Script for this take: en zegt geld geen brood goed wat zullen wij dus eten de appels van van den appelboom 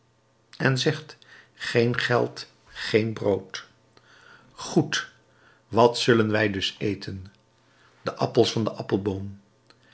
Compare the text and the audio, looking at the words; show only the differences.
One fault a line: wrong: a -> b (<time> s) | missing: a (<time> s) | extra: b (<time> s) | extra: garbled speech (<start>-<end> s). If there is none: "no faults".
extra: geen (1.5 s)
missing: van (8.6 s)